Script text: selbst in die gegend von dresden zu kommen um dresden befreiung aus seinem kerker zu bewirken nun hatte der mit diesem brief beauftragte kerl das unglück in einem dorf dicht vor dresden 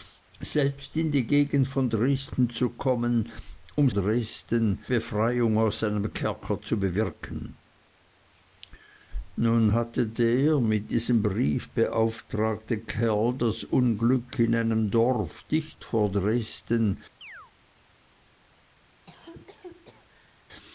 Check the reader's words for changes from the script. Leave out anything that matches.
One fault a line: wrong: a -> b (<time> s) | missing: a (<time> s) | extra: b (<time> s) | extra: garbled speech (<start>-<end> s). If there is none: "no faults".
no faults